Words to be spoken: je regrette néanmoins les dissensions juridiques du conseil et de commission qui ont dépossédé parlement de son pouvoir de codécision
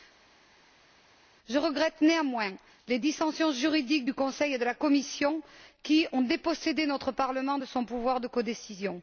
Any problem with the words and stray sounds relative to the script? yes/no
yes